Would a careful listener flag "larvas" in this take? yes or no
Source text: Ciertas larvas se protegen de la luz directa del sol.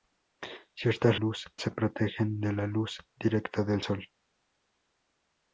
yes